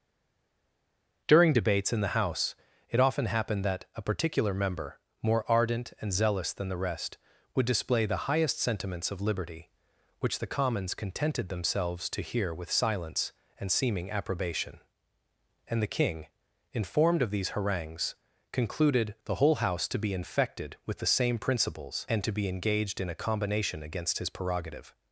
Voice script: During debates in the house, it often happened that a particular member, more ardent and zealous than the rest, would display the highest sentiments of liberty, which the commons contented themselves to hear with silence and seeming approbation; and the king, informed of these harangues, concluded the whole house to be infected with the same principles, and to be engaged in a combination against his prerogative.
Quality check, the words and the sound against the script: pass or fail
pass